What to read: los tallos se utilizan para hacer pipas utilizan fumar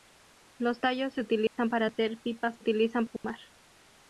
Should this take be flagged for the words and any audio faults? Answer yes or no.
yes